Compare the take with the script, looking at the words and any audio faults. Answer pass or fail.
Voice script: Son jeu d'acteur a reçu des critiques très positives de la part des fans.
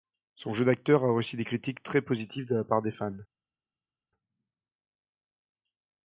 pass